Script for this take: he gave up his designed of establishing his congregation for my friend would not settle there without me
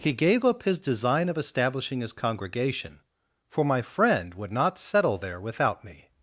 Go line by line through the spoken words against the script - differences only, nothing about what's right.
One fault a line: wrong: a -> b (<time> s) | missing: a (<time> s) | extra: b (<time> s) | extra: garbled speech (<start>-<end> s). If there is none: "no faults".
wrong: designed -> design (0.8 s)